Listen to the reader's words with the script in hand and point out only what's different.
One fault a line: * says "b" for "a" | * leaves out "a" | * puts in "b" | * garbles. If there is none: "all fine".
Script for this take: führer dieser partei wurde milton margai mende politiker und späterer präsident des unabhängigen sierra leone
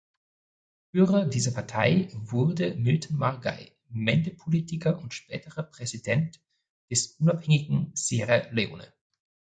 all fine